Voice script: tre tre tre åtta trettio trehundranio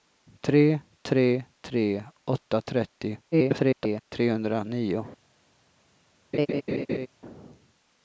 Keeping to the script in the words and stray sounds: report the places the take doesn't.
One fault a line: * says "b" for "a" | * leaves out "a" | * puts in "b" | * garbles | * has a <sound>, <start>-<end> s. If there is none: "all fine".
* garbles
* has a laugh, 6.3-7.1 s